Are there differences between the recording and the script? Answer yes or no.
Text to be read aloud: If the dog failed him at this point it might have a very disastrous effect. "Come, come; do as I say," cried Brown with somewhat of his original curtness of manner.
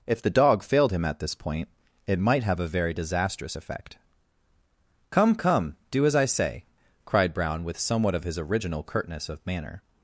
no